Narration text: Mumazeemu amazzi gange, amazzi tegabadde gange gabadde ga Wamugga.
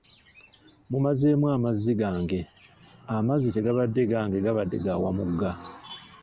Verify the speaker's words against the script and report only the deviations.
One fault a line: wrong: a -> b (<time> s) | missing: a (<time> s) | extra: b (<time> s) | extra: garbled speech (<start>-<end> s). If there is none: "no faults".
no faults